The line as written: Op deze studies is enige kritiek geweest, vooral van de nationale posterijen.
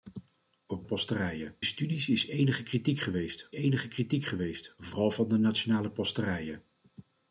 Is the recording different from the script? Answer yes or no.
yes